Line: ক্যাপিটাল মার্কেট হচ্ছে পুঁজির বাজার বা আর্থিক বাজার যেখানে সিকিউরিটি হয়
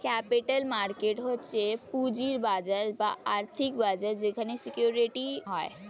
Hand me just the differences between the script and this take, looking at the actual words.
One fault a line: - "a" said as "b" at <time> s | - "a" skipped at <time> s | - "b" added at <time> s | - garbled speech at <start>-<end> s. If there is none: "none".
none